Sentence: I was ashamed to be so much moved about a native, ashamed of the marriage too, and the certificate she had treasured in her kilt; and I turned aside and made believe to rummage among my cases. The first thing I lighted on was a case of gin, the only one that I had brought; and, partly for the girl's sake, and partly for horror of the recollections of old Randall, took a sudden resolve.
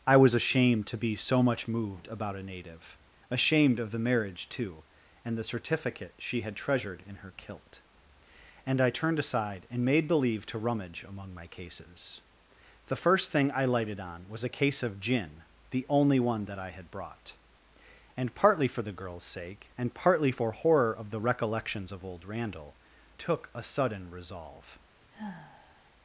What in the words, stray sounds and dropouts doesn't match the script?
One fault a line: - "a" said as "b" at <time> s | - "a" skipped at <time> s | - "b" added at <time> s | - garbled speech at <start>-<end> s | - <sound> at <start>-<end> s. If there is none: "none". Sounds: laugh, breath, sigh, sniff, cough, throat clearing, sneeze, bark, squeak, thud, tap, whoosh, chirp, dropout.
- sigh at 25.1-25.9 s